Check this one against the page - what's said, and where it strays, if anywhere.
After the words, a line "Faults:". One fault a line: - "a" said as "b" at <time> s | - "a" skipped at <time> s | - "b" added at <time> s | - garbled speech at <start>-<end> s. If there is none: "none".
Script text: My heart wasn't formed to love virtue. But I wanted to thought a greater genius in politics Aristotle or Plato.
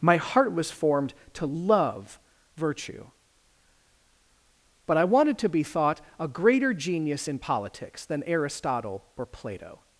My heart was formed to love virtue. But I wanted to be thought a greater genius in politics than Aristotle or Plato.
Faults:
- "wasn't" said as "was" at 0.5 s
- "be" added at 5.5 s
- "than" added at 8.1 s